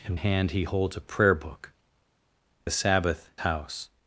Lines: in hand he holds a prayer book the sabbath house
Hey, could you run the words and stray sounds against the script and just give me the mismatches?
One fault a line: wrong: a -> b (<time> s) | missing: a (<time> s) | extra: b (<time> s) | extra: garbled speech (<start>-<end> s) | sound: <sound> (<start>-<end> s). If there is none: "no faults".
no faults